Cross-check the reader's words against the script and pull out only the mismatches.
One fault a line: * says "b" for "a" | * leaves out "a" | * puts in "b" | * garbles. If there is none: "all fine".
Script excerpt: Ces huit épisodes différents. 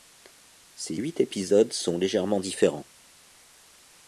* puts in "sont légèrement"